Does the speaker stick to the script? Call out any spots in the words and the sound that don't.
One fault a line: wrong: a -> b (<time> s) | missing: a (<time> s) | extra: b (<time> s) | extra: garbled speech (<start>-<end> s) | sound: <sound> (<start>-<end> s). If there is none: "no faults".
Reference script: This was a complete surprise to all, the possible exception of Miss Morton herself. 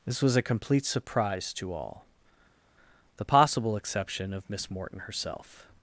no faults